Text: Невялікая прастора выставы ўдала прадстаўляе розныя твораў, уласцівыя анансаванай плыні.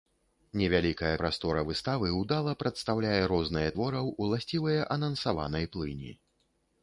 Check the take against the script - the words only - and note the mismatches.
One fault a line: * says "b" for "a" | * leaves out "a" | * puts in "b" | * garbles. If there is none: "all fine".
all fine